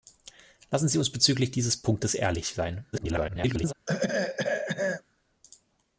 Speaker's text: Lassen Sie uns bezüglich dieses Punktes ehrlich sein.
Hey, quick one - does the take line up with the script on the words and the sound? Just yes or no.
no